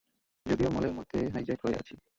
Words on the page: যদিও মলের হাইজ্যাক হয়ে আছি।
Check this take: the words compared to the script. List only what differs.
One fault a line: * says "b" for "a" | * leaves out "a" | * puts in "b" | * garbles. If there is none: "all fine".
* puts in "মধ্যে"